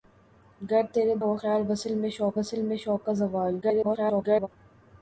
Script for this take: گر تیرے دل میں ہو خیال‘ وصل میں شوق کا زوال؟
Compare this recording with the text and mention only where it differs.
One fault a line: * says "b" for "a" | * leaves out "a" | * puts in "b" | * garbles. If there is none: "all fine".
* says "ہو خیال وصل" for "دل"
* says "شوق" for "ہو خیال"
* garbles